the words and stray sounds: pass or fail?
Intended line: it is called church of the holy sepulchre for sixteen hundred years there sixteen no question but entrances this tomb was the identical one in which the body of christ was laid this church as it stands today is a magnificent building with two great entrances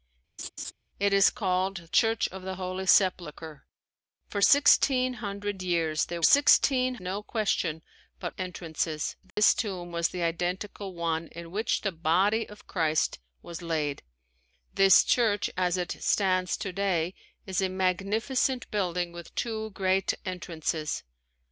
fail